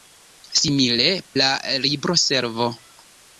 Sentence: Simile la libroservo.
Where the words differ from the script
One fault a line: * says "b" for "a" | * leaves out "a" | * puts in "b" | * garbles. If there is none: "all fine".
all fine